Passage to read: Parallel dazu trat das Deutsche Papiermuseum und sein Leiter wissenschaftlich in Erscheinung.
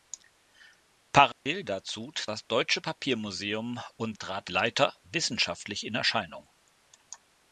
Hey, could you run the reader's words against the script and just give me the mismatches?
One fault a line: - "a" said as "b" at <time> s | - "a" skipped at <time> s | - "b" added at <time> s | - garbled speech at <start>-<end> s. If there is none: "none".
- "trat" skipped at 2.1 s
- "sein" said as "trat" at 4.2 s